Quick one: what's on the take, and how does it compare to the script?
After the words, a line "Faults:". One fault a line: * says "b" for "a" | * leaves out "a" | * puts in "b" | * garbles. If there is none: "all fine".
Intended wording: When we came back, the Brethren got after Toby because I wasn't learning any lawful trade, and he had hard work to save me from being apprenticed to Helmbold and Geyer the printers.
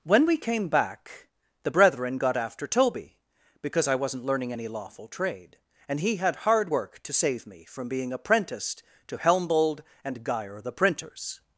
When we came back, the Brethren got after Toby because I wasn't learning any lawful trade, and he had hard work to save me from being apprenticed to Helmbold and Geyer the printers.
Faults:
all fine